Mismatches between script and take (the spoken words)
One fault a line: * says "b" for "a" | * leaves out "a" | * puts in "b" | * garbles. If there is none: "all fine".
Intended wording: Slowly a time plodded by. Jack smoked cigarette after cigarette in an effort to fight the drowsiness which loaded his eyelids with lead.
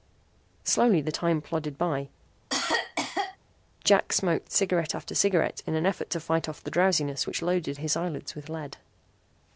* says "the" for "a"
* puts in "off"